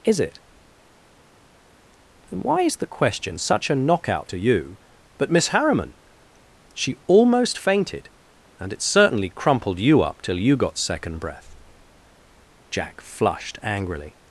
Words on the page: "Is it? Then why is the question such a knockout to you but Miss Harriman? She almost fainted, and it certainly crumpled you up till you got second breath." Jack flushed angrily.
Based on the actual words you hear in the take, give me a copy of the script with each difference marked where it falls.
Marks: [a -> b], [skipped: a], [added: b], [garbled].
"Is it? Then why is the question such a knockout to you but Miss Harriman? She almost fainted, and it certainly crumpled you up till you got second breath." Jack flushed angrily.